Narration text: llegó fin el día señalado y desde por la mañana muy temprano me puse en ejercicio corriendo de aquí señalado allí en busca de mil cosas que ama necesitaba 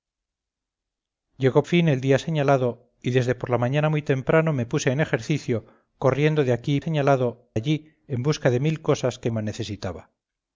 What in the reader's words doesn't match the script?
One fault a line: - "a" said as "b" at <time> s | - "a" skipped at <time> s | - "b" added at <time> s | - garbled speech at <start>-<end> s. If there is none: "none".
none